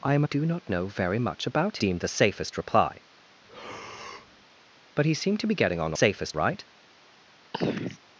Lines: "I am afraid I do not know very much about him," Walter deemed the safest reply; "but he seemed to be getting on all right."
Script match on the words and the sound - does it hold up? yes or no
no